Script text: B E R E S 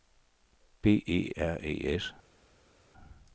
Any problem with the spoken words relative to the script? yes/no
no